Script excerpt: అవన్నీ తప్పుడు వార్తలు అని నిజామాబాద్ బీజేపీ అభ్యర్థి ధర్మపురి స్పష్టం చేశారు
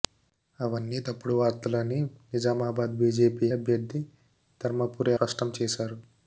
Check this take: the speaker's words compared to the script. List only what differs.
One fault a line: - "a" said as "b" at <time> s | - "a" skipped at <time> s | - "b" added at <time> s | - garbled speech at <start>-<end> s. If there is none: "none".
none